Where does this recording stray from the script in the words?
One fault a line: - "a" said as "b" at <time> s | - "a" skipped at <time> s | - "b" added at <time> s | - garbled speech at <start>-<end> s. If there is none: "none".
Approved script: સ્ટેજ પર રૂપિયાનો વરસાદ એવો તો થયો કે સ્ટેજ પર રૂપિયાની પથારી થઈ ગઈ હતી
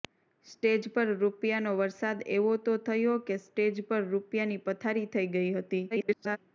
- garbled speech at 5.9-6.4 s